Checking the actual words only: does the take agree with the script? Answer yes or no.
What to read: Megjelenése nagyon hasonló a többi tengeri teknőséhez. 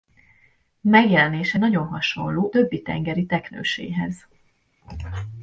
no